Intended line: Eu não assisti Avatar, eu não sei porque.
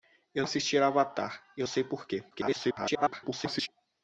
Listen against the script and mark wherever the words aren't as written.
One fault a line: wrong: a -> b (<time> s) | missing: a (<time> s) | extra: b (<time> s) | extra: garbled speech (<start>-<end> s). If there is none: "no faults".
missing: não (0.4 s)
missing: não (1.7 s)
extra: garbled speech (2.3-3.7 s)